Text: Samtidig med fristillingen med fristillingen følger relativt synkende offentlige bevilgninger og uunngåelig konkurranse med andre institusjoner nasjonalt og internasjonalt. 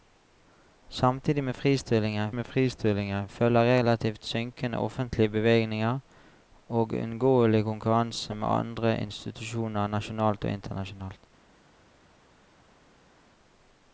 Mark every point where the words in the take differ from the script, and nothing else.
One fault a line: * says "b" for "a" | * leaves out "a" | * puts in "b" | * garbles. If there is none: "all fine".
all fine